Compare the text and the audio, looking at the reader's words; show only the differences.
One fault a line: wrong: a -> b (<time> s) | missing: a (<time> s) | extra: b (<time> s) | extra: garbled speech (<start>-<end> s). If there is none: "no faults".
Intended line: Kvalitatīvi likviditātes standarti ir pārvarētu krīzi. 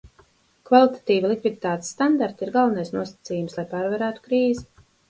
extra: galvenais nosacījums lai (2.5 s)